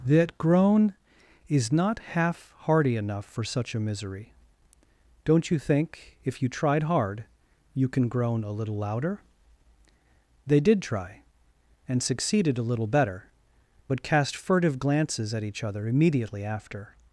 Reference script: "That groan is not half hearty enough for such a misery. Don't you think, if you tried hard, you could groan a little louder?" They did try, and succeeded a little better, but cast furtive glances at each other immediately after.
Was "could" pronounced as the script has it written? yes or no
no